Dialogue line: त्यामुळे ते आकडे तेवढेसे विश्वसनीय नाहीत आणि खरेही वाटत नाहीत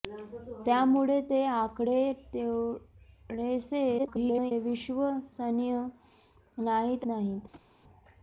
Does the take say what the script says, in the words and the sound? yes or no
no